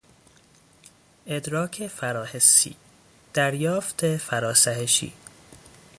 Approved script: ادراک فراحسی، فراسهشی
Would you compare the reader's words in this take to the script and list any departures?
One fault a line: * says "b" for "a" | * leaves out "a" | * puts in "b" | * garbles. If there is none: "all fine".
* puts in "دریافت"